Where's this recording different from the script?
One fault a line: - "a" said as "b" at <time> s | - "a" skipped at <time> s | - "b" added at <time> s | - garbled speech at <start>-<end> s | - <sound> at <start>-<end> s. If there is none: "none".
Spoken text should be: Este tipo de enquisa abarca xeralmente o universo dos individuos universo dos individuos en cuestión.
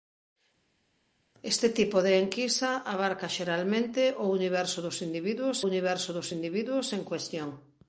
none